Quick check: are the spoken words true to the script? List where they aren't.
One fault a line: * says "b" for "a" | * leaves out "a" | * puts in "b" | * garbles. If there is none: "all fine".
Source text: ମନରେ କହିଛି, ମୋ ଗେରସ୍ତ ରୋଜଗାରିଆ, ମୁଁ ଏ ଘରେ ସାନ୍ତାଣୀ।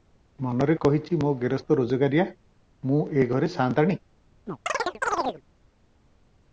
all fine